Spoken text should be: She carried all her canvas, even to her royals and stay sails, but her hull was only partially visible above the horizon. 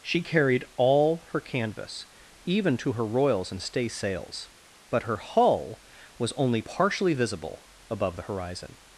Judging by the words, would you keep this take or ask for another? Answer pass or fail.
pass